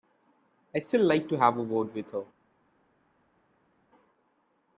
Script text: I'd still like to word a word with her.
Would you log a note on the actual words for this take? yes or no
yes